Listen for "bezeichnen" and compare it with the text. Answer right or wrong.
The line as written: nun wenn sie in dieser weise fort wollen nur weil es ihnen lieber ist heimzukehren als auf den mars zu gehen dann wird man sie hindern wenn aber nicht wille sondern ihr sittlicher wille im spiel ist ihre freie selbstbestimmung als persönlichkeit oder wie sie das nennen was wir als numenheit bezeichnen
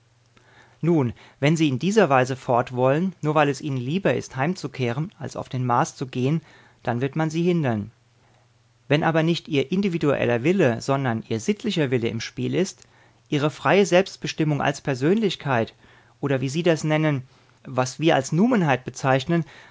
right